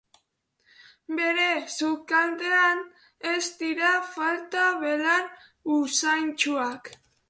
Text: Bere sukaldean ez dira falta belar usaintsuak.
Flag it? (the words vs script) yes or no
no